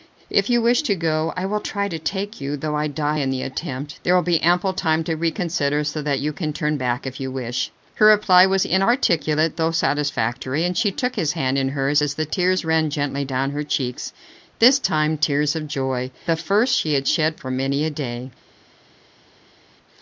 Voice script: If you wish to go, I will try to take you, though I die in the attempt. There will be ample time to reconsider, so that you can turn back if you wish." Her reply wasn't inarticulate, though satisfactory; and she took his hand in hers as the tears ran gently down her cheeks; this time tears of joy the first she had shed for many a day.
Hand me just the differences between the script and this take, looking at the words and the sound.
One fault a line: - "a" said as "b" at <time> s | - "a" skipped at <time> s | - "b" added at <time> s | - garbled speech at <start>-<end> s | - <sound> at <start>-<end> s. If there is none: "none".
- "wasn't" said as "was" at 8.4 s